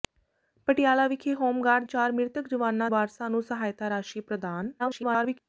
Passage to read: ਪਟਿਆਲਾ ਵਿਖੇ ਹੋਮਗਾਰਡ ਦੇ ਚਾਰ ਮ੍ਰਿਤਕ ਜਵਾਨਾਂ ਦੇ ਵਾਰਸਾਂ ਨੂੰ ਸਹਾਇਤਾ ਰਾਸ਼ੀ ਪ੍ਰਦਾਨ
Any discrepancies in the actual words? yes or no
yes